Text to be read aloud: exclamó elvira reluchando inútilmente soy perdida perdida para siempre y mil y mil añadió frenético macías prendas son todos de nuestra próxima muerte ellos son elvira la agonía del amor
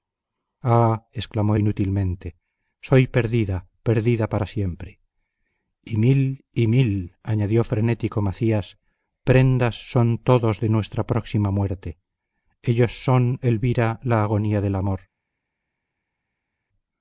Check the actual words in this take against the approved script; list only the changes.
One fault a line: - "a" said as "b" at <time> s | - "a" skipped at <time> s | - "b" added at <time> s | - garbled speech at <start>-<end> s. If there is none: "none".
- "elvira reluchando" skipped at 1.6 s